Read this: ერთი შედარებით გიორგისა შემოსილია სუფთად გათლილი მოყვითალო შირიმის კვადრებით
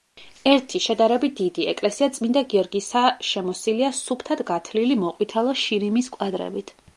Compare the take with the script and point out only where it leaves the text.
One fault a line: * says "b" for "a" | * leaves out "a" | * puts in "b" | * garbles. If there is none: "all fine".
* puts in "დიდი ეკლესია წმინდა"